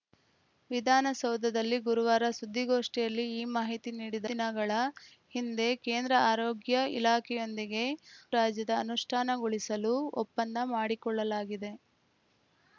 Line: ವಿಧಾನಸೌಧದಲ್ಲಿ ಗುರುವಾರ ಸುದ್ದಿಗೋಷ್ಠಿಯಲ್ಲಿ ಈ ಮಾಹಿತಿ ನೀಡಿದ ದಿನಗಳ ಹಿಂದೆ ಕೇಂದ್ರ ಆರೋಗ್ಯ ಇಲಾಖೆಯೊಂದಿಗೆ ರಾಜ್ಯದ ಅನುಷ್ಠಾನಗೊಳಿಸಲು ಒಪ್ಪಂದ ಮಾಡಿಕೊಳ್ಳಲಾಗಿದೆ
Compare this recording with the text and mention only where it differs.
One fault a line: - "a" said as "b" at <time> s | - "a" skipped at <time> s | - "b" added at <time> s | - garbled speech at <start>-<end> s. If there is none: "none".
none